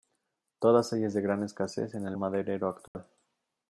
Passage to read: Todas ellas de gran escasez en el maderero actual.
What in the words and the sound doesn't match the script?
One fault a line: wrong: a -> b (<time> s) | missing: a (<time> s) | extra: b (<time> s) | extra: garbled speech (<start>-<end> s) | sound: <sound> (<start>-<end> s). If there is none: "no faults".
sound: dropout (2.9-2.9 s)